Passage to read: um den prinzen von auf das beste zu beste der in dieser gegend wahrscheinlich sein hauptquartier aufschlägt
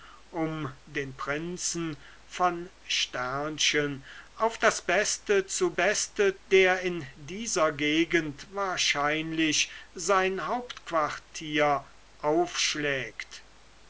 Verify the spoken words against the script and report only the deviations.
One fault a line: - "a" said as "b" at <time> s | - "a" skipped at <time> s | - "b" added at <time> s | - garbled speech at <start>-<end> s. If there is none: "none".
none